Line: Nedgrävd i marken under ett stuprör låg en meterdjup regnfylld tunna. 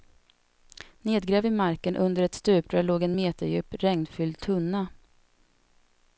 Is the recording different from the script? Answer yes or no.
no